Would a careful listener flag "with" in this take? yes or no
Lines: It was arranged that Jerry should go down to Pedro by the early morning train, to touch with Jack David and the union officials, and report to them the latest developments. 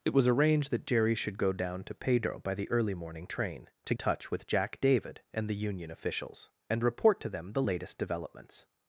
no